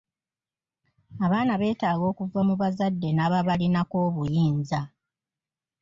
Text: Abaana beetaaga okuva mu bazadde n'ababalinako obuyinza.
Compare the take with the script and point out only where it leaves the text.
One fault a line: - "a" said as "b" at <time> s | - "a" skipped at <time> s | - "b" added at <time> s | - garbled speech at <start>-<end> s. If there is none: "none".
none